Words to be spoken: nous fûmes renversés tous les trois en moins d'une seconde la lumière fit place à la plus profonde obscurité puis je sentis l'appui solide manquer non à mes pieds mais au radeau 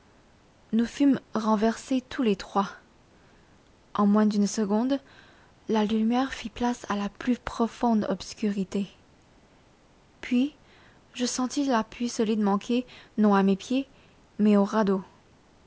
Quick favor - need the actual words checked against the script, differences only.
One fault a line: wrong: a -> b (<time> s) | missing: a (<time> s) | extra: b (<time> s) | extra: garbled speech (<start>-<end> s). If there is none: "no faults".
no faults